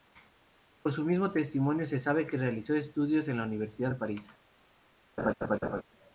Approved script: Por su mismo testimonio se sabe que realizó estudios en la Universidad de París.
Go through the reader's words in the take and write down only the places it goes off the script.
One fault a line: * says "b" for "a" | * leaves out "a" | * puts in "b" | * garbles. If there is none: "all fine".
all fine